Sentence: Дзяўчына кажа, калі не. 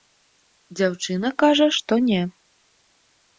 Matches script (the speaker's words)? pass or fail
fail